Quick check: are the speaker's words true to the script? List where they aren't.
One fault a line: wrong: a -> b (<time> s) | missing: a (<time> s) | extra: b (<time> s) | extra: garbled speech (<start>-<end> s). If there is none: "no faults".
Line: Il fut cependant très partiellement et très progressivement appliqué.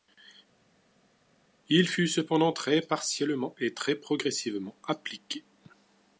no faults